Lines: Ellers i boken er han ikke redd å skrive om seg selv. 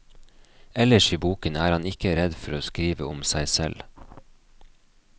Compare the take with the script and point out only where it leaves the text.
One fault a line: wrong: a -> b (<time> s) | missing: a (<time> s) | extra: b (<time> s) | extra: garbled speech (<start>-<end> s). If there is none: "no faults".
extra: for (2.4 s)